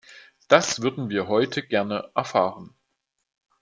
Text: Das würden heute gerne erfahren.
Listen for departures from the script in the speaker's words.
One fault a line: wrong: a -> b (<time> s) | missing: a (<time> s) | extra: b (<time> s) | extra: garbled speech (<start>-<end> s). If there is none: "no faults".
extra: wir (1.1 s)